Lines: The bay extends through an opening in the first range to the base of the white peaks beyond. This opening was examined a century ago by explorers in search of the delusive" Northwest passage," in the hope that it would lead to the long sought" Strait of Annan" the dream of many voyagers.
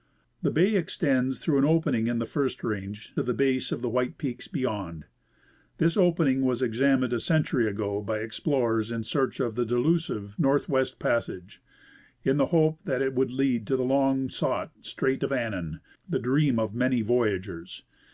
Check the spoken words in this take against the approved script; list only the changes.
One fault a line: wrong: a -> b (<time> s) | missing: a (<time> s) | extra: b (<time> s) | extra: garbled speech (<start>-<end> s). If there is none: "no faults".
no faults